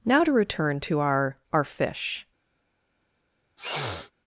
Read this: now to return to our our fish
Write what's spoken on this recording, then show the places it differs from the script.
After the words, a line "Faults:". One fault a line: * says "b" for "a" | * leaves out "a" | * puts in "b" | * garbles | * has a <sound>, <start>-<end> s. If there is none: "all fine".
now to return to our our fish
Faults:
* has a sniff, 3.6-4.1 s